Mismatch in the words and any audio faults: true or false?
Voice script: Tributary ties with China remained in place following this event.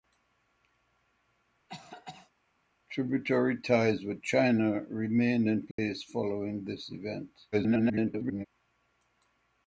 true